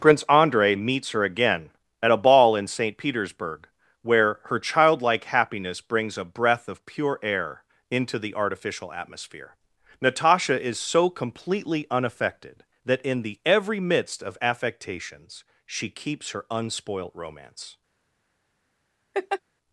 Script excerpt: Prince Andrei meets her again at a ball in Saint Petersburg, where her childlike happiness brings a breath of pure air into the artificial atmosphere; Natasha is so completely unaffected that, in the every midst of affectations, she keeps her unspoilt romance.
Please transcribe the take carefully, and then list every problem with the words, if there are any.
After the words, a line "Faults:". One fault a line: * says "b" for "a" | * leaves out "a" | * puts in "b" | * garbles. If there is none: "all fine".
Prince Andrei meets her again at a ball in Saint Petersburg, where her childlike happiness brings a breath of pure air into the artificial atmosphere; Natasha is so completely unaffected that, in the every midst of affectations, she keeps her unspoilt romance.
Faults:
all fine